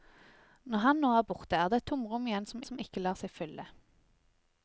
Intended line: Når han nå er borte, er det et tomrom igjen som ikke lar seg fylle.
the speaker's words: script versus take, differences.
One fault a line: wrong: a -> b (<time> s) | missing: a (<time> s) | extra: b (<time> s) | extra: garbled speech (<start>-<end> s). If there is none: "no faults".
extra: som (2.7 s)